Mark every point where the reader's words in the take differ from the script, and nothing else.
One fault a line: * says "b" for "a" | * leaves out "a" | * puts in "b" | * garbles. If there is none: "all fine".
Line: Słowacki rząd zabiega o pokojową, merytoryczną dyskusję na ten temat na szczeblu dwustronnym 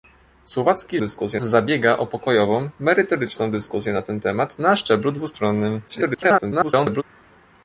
* says "dyskusję" for "rząd"
* garbles